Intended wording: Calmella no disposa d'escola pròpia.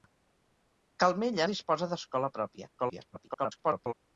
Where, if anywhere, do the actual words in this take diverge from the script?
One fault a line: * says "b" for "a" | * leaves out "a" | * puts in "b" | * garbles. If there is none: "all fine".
* leaves out "no"
* garbles